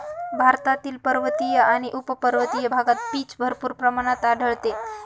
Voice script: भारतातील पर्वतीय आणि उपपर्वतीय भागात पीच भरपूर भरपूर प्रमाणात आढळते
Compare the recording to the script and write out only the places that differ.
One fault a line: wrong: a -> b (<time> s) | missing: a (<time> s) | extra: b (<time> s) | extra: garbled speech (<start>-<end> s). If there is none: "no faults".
missing: भरपूर (3.7 s)